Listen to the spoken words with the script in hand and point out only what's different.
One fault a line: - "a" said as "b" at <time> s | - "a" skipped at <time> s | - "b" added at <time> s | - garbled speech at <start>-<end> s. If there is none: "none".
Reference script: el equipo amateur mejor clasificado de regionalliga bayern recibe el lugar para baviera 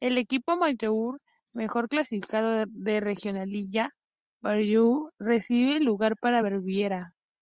none